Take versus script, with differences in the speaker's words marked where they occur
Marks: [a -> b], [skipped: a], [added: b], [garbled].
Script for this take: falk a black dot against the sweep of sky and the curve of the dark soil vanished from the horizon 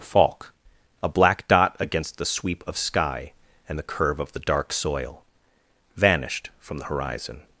falk a black dot against the sweep of sky and the curve of the dark soil vanished from the horizon